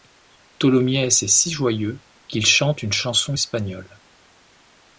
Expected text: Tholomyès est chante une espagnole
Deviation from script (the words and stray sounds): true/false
true